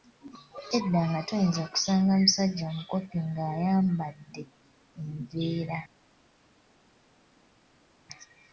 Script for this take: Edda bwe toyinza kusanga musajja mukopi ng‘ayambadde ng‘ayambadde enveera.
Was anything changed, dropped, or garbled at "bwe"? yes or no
yes